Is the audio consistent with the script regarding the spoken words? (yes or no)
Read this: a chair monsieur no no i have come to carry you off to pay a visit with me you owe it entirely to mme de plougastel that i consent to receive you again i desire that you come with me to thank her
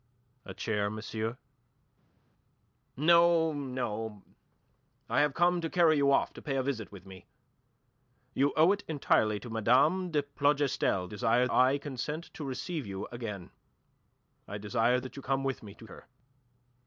no